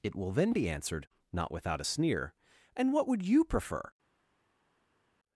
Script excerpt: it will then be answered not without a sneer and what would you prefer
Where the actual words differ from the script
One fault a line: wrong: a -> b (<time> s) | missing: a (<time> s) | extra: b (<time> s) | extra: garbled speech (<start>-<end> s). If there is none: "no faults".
no faults